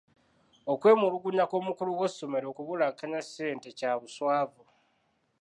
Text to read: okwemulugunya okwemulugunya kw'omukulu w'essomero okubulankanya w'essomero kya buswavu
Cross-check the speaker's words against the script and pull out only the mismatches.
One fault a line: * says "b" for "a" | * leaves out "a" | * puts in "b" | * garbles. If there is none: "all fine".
* leaves out "okwemulugunya"
* says "ssente" for "w'essomero"